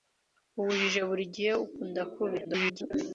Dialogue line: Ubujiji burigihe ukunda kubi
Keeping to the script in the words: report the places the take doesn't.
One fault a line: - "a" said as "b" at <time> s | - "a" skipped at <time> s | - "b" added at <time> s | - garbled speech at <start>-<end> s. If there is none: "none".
- garbled speech at 2.4-2.9 s